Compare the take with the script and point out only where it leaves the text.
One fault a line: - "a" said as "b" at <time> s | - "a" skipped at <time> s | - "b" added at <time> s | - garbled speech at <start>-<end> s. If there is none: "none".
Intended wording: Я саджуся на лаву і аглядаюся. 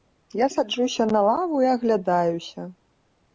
none